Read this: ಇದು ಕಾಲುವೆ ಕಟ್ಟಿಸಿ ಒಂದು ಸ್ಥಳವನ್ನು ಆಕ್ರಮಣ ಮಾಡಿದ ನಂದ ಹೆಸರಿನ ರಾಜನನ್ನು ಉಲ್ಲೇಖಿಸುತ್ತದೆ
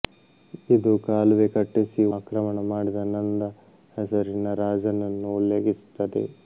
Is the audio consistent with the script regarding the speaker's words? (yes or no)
no